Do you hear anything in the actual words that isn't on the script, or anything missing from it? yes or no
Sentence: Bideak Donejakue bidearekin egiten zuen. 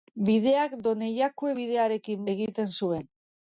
no